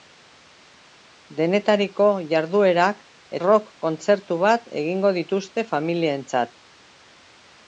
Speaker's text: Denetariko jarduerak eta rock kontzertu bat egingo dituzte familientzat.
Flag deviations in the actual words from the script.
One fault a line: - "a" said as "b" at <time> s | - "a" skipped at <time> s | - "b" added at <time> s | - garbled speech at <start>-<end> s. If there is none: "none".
- "eta" skipped at 3.0 s